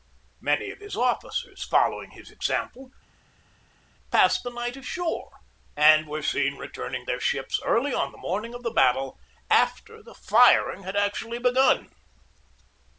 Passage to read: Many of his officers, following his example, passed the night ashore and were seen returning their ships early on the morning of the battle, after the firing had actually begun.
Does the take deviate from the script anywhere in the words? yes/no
no